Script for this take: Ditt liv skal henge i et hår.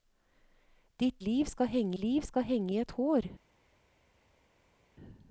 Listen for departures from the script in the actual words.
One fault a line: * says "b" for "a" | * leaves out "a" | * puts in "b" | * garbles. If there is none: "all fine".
* puts in "liv skal henge"